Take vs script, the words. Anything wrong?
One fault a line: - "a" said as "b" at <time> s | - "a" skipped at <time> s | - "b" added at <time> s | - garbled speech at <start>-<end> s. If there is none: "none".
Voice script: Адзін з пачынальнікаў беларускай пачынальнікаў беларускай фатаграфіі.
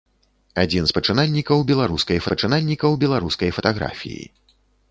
none